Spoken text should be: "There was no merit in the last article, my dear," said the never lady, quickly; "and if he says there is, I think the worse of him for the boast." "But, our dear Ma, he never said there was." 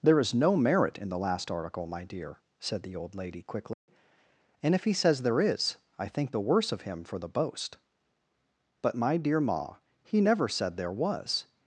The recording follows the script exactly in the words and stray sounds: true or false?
false